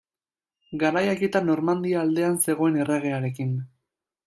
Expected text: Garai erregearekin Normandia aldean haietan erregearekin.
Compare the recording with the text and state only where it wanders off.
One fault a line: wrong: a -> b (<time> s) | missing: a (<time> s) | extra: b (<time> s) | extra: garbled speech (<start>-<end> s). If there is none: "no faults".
wrong: erregearekin -> haietan (1.1 s)
wrong: haietan -> zegoen (2.5 s)